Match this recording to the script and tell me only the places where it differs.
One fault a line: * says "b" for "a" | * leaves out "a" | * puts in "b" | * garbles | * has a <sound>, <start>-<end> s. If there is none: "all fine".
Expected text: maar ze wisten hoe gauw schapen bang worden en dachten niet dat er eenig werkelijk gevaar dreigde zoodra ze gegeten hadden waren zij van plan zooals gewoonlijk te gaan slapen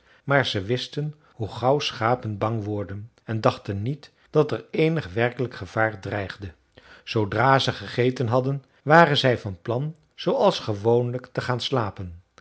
all fine